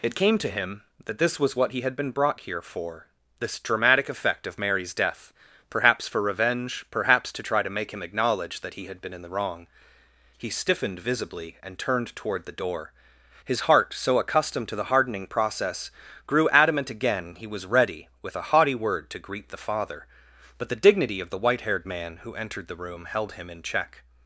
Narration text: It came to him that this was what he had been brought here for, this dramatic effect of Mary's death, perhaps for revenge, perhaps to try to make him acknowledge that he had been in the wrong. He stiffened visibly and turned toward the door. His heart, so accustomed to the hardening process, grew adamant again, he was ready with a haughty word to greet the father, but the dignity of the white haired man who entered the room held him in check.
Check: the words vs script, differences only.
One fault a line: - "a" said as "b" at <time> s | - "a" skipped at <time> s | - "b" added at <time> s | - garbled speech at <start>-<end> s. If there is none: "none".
none